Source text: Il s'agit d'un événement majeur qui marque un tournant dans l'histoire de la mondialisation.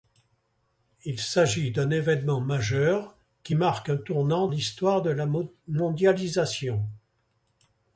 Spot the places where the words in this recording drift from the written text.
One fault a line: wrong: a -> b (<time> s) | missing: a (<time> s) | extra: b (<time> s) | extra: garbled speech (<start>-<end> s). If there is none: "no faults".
missing: dans (4.5 s)